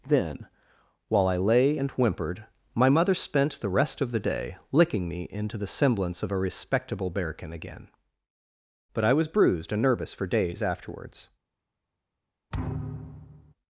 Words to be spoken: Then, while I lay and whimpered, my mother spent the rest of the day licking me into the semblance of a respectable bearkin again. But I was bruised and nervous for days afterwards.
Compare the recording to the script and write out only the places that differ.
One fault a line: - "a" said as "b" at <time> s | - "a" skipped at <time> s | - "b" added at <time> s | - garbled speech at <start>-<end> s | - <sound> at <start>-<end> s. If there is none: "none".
- thud at 12.5-13.5 s